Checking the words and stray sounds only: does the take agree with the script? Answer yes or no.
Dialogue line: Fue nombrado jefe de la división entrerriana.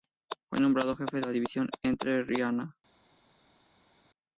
no